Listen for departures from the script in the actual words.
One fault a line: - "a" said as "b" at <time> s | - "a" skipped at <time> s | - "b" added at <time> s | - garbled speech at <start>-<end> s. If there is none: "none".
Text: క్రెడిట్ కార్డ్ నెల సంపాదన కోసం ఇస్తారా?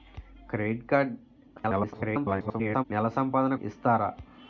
- garbled speech at 1.6-2.8 s
- "కోసం" skipped at 3.5 s